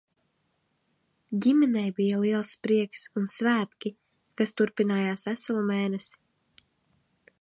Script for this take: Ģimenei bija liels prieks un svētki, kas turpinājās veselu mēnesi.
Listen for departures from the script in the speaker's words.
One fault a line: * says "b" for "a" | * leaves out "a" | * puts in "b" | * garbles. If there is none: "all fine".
all fine